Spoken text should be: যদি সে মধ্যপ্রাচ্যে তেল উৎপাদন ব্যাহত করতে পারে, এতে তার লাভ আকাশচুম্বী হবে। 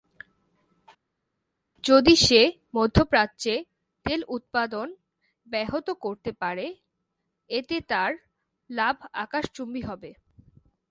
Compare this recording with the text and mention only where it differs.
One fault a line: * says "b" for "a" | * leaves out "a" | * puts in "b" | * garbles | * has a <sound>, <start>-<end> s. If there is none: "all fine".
all fine